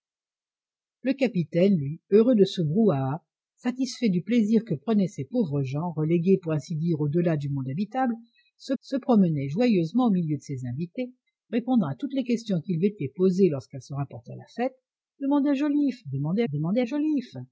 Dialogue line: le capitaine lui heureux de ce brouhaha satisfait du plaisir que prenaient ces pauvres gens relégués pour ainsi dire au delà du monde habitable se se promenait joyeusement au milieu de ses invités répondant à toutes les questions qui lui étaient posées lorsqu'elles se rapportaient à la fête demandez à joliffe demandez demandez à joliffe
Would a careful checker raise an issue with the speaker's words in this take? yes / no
no